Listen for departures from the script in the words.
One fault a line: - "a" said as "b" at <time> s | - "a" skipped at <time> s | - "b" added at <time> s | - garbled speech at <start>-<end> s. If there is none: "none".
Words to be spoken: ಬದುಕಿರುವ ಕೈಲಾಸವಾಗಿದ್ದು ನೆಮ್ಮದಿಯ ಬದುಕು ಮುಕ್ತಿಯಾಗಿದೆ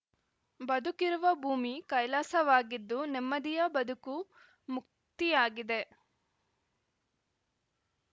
- "ಭೂಮಿ" added at 1.4 s